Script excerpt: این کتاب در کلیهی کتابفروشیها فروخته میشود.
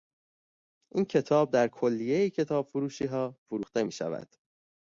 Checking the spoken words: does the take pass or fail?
pass